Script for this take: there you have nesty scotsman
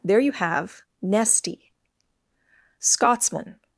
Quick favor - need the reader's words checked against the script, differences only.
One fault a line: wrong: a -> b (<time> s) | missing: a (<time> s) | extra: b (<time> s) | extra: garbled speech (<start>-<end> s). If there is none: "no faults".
no faults